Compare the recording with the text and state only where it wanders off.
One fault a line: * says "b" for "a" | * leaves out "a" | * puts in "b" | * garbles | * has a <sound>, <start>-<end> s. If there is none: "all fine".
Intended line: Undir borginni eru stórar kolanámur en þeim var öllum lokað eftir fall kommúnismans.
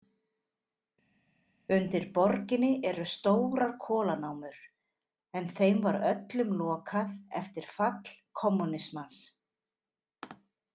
all fine